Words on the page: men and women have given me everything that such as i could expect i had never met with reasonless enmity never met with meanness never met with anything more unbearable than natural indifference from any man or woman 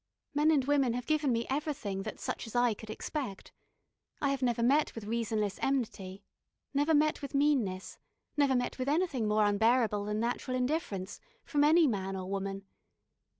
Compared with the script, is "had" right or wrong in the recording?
wrong